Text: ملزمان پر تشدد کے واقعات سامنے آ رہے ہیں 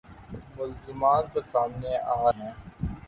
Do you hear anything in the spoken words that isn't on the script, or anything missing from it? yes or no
yes